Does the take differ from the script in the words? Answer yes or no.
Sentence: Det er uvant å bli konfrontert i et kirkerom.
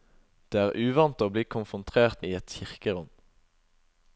no